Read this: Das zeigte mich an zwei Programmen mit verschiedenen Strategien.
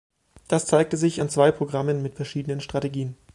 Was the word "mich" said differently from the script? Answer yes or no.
yes